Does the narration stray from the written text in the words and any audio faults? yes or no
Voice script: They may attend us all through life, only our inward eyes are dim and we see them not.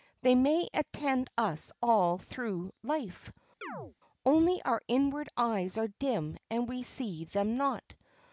yes